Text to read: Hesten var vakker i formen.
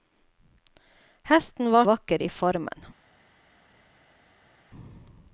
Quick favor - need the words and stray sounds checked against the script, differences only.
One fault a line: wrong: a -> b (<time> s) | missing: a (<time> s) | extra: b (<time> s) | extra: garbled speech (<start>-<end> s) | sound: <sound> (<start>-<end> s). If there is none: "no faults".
no faults